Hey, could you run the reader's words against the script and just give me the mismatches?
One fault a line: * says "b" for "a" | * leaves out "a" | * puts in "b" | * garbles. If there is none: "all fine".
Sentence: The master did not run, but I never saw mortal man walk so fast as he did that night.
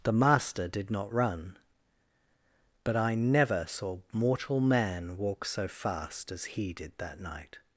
all fine